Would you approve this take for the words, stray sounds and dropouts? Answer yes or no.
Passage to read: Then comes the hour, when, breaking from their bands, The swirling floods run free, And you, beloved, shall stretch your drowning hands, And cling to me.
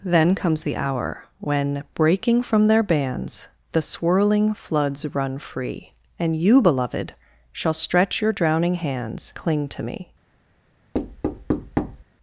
no